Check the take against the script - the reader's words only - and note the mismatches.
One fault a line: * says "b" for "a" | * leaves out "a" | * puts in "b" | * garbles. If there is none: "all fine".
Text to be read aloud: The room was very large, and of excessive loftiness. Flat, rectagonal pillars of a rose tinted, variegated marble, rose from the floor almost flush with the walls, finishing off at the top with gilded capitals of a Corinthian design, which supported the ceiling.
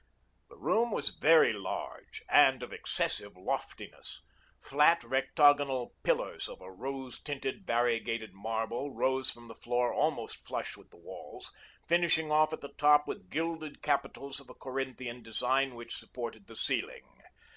all fine